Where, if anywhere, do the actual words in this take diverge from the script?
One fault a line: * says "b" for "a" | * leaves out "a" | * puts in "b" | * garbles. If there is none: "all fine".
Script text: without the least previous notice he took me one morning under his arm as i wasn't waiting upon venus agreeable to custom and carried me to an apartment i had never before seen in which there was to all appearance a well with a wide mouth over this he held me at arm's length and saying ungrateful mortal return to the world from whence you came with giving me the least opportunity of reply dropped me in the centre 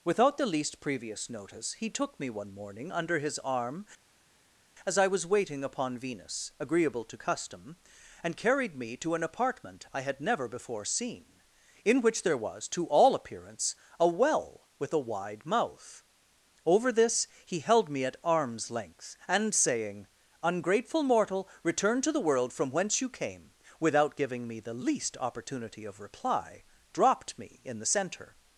* says "was" for "wasn't"
* says "without" for "with"